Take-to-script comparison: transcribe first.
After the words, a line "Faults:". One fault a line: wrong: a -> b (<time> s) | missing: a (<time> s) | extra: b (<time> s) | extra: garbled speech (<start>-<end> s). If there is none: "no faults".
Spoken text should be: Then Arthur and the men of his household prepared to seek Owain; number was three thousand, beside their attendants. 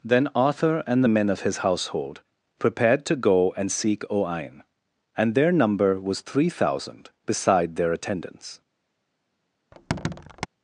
Then Arthur and the men of his household prepared to go and seek Owain; and their number was three thousand, beside their attendants.
Faults:
extra: go and (3.2 s)
extra: and their (5.2 s)